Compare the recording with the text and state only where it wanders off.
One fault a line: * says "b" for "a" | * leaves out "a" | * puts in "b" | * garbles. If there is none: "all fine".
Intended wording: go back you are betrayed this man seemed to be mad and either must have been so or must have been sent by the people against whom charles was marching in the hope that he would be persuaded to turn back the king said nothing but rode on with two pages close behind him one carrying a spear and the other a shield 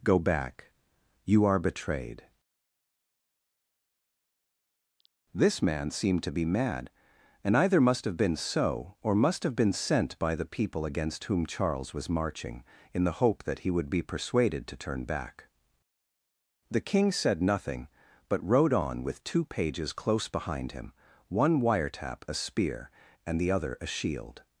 * says "wiretap" for "carrying"